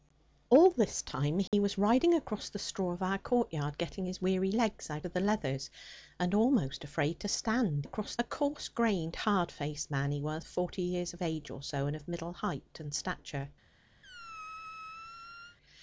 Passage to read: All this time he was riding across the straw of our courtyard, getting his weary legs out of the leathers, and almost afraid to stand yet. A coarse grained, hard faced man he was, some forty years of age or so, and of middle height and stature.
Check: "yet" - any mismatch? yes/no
yes